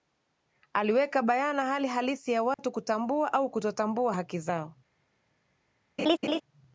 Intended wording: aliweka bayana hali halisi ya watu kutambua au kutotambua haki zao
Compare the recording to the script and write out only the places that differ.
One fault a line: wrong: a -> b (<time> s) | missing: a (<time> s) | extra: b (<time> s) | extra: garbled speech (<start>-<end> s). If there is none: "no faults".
no faults